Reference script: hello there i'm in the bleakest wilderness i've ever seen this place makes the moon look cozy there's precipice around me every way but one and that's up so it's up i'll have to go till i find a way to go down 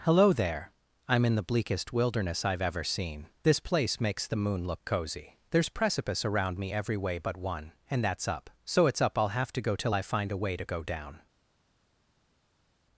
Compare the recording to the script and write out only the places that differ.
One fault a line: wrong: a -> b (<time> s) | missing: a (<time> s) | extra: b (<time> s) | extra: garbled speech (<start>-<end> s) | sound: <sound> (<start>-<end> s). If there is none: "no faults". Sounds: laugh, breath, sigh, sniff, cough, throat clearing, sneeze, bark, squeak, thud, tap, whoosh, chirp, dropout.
no faults